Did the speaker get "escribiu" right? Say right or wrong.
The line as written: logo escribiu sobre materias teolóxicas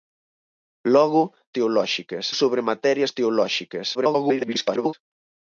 wrong